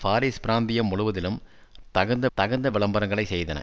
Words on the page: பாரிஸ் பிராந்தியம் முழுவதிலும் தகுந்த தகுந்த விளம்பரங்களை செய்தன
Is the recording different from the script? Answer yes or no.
no